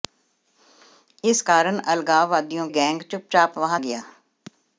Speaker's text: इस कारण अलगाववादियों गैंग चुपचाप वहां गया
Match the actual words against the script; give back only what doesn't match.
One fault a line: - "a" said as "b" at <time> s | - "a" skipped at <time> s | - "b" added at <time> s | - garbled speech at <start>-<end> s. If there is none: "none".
none